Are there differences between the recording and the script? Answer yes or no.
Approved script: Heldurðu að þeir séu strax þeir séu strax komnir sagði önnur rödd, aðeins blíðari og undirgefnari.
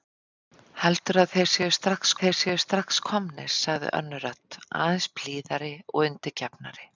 no